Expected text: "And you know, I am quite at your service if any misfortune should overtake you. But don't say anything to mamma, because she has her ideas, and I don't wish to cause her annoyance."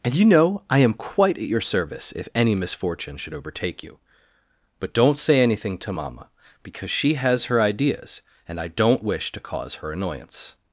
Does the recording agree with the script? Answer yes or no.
yes